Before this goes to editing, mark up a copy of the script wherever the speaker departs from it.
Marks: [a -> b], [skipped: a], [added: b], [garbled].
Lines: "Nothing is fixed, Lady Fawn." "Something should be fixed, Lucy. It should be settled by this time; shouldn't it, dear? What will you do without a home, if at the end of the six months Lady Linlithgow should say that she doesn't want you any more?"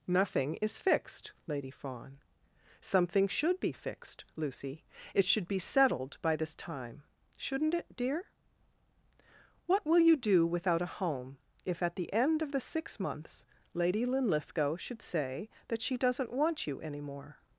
"Nothing is fixed, Lady Fawn." "Something should be fixed, Lucy. It should be settled by this time; shouldn't it, dear? What will you do without a home, if at the end of the six months Lady Linlithgow should say that she doesn't want you any more?"